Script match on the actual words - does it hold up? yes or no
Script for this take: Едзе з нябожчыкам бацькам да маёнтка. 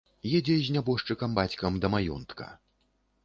yes